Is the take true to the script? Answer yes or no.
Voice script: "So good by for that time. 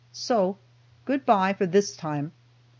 no